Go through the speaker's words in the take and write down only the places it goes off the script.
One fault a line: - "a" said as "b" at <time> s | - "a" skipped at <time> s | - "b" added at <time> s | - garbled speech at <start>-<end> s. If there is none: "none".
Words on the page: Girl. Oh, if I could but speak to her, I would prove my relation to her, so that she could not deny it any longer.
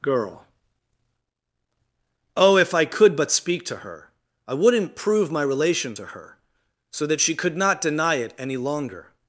- "would" said as "wouldn't" at 4.5 s